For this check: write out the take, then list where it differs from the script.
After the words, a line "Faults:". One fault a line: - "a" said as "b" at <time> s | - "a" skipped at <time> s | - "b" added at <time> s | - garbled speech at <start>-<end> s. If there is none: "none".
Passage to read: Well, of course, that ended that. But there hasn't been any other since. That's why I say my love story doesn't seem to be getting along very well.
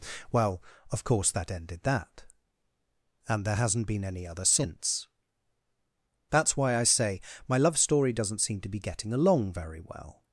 Well, of course, that ended that. And there hasn't been any other since. That's why I say my love story doesn't seem to be getting along very well.
Faults:
- "But" said as "And" at 3.3 s